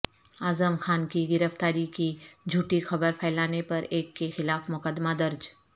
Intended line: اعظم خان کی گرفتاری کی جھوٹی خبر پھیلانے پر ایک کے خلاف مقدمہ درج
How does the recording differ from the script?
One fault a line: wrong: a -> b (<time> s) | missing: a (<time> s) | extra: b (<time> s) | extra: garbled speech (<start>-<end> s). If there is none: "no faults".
no faults